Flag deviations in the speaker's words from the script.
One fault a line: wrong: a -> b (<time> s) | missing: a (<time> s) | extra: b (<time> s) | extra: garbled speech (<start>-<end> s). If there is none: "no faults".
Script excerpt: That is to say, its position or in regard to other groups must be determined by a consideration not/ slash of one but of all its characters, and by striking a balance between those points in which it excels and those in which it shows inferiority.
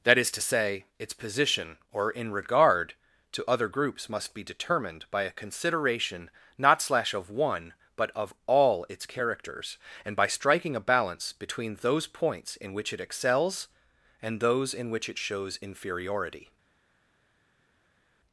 no faults